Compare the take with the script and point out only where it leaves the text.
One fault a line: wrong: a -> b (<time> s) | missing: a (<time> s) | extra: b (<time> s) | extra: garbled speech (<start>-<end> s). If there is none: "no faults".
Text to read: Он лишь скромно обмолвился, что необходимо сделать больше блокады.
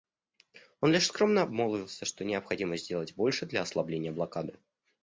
extra: для ослабления (3.5 s)